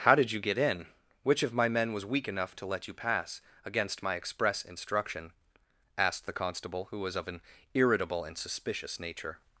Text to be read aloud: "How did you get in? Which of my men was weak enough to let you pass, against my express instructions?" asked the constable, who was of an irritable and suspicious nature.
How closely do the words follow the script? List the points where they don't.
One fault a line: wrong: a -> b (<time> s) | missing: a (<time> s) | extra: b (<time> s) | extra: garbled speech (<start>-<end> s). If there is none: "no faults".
wrong: instructions -> instruction (4.7 s)